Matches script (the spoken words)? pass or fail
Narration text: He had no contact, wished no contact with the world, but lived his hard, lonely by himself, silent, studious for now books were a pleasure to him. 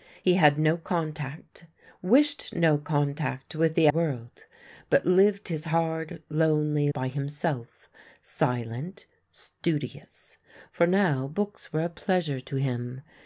pass